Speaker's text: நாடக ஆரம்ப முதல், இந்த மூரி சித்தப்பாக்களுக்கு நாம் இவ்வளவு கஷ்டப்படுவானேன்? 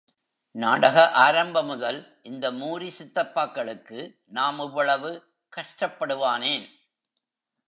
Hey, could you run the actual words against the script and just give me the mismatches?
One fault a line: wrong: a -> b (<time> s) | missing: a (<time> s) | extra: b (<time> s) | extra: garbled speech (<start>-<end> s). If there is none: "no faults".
no faults